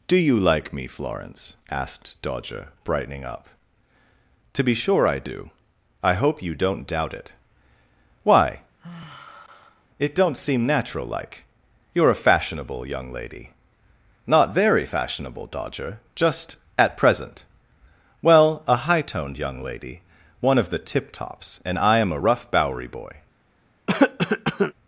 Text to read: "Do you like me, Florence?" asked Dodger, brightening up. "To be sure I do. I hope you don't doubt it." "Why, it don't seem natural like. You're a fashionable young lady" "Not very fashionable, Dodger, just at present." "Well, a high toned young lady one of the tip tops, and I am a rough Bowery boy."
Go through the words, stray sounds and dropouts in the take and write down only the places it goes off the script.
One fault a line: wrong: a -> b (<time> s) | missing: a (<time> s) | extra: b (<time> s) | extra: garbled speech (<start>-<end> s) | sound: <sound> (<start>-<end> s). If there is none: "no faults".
sound: sigh (8.8-9.9 s)
sound: cough (23.9-24.7 s)